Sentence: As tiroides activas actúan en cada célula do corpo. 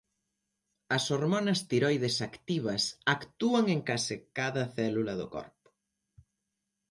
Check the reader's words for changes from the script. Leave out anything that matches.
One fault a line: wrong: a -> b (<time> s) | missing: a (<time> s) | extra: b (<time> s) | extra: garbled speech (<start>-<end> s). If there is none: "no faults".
extra: hormonas (1.1 s)
extra: case (3.9 s)